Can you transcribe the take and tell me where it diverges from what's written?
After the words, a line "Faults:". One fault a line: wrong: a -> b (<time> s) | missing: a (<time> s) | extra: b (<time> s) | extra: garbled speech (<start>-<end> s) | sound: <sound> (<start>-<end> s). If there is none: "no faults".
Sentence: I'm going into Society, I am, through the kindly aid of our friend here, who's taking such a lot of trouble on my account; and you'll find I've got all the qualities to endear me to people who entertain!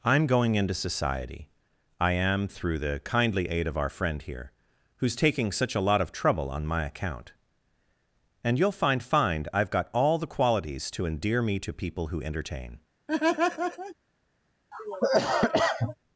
I'm going into Society, I am, through the kindly aid of our friend here, who's taking such a lot of trouble on my account; and you'll find find I've got all the qualities to endear me to people who entertain!
Faults:
extra: find (9.0 s)
sound: laugh (13.1-13.9 s)
sound: cough (14.7-16.0 s)